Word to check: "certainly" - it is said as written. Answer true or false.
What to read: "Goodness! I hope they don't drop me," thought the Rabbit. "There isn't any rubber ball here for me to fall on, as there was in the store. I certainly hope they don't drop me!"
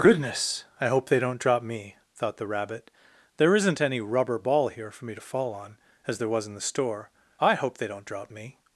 false